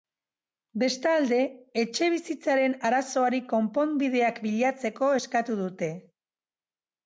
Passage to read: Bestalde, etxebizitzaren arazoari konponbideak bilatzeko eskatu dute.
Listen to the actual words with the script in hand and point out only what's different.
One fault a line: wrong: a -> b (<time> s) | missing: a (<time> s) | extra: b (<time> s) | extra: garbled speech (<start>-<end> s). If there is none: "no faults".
no faults